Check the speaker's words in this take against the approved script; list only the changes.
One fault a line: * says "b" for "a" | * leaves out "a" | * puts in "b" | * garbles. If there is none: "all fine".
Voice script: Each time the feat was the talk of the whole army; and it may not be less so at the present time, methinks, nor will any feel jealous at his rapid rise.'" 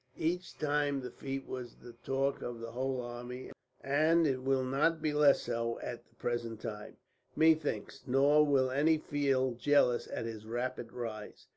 * says "will" for "may"